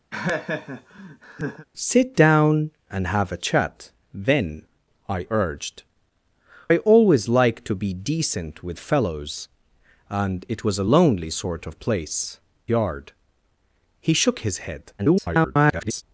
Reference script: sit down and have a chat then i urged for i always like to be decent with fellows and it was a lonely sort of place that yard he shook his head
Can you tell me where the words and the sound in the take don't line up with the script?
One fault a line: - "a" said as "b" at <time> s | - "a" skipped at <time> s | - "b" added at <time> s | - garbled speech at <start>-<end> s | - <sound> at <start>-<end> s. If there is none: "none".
- laugh at 0.1-1.7 s
- "for" skipped at 5.8 s
- "that" skipped at 12.4 s
- garbled speech at 15.0-16.0 s